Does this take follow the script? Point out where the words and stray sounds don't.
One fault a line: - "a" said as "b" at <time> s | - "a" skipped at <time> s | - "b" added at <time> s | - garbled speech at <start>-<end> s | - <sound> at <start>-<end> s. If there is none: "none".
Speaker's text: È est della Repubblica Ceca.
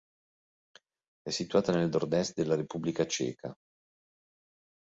- "situata nel nord" added at 1.3 s